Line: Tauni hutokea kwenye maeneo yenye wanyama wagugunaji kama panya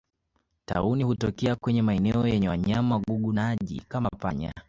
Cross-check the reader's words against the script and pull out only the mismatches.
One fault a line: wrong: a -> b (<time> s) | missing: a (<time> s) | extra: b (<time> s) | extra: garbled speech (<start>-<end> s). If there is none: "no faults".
no faults